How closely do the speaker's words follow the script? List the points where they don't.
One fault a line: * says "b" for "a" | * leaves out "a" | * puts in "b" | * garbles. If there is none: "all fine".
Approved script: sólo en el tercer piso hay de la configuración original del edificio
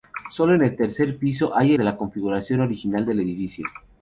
all fine